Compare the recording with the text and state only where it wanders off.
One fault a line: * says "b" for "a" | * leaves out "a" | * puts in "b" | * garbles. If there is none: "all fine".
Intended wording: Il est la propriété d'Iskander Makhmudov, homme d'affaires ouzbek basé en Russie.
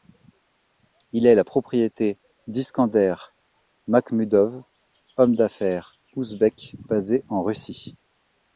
all fine